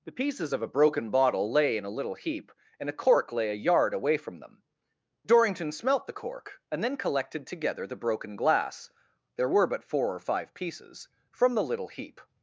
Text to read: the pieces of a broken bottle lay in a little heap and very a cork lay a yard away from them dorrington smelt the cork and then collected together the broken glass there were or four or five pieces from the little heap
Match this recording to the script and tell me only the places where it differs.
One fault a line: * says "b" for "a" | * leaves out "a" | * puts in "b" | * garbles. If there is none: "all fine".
* leaves out "very"
* says "but" for "or"